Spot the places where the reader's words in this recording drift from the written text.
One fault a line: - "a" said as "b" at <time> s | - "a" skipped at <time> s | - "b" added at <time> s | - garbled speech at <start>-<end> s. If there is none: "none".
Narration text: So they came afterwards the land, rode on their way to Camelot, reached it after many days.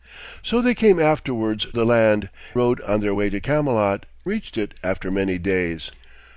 none